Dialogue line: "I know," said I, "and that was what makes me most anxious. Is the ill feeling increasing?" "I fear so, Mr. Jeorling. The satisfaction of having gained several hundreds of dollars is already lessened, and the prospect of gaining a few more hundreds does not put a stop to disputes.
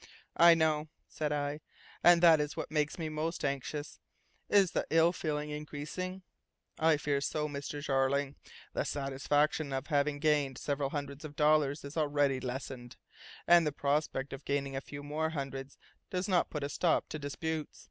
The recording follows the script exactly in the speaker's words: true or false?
false